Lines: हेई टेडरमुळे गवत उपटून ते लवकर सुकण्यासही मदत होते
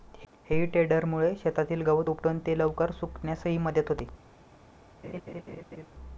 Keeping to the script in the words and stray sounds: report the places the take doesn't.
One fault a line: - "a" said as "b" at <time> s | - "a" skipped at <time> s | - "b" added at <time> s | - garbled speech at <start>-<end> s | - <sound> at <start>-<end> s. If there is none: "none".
- "शेतातील" added at 1.4 s
- laugh at 5.0-5.9 s